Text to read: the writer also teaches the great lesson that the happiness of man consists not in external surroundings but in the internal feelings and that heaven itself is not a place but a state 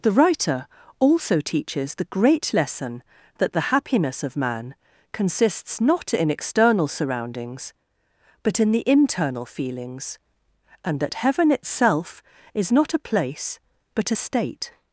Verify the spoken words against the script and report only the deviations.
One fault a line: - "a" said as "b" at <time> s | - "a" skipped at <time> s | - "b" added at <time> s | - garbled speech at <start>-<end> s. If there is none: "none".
none